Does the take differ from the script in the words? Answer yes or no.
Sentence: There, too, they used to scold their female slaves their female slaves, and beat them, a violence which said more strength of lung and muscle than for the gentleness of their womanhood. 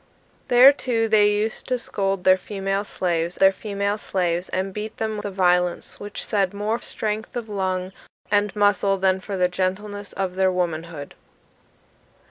no